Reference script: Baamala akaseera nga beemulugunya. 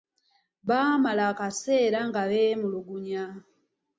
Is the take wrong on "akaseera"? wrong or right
right